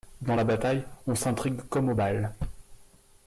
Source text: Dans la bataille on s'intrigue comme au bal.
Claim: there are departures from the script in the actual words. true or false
false